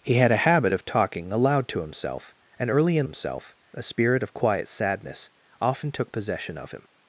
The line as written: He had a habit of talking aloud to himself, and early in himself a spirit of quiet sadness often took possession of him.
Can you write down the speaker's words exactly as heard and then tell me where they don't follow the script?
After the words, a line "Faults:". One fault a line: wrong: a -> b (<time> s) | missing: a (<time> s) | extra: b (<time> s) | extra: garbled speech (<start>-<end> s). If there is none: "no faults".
He had a habit of talking aloud to himself, and early in himself a spirit of quiet sadness often took possession of him.
Faults:
no faults